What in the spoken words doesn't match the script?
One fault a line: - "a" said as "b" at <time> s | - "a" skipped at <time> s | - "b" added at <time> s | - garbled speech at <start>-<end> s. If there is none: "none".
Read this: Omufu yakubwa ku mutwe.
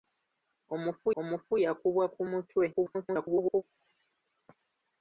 - "omufu" added at 1.2 s
- garbled speech at 2.7-3.6 s